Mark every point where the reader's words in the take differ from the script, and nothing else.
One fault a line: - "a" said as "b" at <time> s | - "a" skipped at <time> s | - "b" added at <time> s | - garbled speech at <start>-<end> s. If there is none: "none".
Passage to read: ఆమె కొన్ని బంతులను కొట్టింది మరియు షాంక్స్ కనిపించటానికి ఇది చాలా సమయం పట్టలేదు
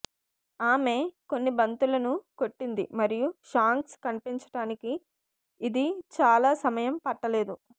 none